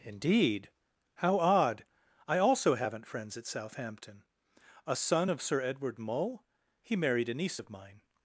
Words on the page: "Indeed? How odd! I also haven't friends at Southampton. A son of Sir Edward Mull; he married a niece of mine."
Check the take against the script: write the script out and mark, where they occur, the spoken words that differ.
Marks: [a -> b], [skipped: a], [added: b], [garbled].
"Indeed? How odd! I also haven't friends at Southampton. A son of Sir Edward Mull; he married a niece of mine."